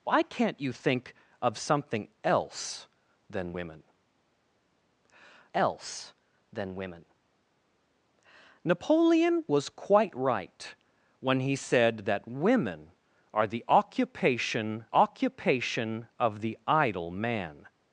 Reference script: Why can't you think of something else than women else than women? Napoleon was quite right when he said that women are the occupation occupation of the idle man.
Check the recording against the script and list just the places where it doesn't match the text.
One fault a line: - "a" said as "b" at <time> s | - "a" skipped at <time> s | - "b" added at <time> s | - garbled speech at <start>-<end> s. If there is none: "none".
none